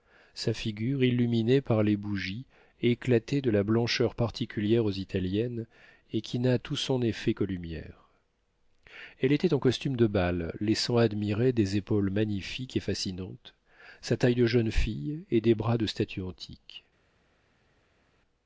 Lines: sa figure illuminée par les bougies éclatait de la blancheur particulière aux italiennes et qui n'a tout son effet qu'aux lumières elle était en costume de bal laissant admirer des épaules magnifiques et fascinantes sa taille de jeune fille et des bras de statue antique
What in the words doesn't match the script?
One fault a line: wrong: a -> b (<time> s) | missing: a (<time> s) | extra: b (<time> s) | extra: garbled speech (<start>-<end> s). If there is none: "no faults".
no faults